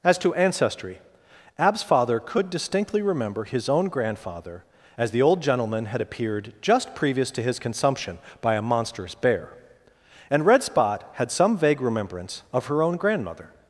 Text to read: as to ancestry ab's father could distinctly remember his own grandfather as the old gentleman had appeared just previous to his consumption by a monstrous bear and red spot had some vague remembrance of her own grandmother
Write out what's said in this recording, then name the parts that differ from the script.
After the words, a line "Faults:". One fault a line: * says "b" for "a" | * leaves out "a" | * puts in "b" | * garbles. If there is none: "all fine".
as to ancestry ab's father could distinctly remember his own grandfather as the old gentleman had appeared just previous to his consumption by a monstrous bear and red spot had some vague remembrance of her own grandmother
Faults:
all fine